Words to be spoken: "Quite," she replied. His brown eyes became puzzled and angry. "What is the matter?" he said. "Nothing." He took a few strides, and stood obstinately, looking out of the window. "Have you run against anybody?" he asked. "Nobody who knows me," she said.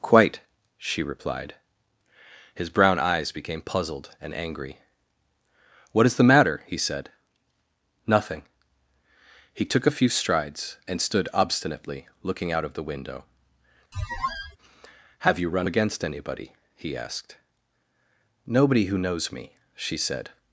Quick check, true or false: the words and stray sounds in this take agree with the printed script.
false